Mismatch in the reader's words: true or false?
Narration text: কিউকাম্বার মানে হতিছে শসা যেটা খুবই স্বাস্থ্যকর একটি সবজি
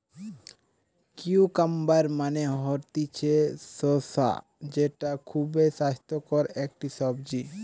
false